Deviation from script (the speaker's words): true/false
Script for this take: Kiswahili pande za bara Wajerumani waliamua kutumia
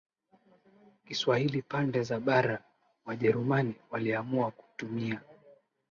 false